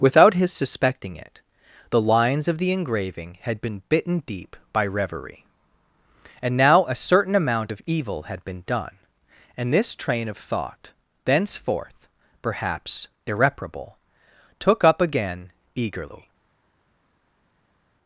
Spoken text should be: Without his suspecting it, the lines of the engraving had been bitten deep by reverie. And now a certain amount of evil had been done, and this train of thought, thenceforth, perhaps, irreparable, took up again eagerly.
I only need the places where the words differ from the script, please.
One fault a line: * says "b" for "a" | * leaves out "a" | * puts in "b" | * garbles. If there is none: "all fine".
all fine